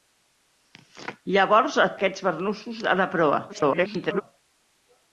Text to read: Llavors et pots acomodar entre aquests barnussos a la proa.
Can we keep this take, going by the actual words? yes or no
no